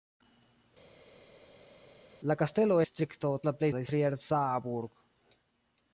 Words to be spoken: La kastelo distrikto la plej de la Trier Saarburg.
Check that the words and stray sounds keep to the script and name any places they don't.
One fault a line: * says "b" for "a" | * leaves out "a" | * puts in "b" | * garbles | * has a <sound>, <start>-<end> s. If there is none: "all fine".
all fine